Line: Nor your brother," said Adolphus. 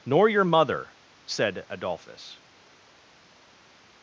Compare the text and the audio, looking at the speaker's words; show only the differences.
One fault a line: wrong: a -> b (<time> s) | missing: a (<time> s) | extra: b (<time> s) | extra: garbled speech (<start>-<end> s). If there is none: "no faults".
wrong: brother -> mother (0.4 s)